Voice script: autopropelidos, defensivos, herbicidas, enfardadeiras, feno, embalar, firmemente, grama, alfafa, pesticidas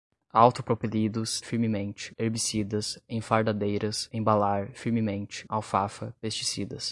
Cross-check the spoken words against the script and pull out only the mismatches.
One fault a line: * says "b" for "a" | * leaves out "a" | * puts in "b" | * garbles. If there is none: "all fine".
* says "firmemente" for "defensivos"
* leaves out "feno"
* leaves out "grama"